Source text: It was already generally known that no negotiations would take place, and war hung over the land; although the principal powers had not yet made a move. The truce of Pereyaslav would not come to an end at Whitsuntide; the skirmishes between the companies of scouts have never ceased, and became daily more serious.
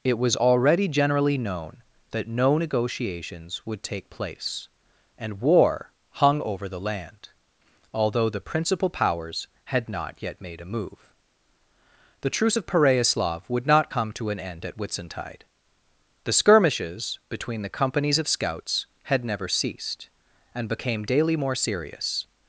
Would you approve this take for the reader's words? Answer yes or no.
no